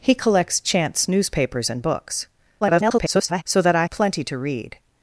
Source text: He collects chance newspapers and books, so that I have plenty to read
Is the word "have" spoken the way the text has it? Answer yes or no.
no